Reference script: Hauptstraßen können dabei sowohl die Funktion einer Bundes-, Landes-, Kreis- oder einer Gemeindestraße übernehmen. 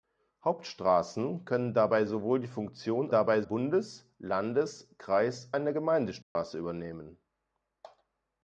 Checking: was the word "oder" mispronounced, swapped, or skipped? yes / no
yes